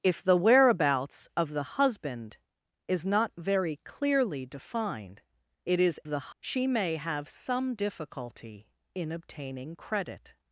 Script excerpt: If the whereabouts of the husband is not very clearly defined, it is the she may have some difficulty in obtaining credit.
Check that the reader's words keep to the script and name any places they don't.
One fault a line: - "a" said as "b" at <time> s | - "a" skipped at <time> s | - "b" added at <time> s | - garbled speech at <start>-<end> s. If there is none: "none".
none